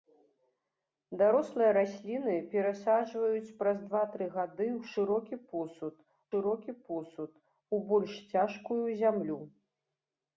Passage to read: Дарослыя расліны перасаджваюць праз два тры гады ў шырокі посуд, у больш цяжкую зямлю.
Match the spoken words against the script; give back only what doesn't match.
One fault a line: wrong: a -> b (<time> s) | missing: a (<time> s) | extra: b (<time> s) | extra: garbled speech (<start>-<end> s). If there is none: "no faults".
extra: шырокі посуд (6.3 s)